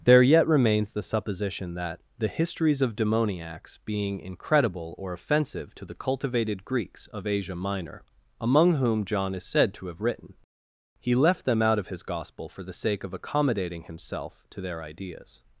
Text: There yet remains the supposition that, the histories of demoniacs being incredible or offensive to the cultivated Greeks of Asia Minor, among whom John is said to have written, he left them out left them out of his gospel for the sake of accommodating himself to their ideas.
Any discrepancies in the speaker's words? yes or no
yes